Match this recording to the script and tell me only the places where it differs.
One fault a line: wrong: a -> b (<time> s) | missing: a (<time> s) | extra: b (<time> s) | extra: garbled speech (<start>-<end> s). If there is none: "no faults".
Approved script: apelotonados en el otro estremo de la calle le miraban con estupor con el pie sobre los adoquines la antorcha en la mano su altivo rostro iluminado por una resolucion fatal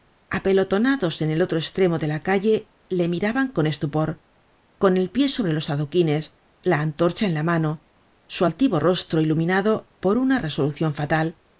no faults